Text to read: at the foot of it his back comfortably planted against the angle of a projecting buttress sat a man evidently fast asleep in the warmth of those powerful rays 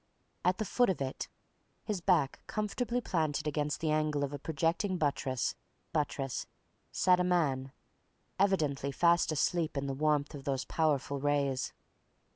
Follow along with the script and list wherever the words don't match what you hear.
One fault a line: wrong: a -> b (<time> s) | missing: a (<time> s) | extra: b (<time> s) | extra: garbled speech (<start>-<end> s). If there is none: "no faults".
extra: buttress (5.9 s)